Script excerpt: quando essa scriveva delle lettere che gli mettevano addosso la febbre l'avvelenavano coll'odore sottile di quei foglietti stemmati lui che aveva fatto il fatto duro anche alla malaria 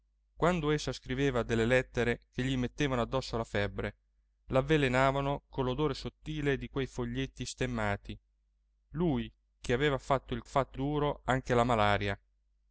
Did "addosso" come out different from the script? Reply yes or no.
no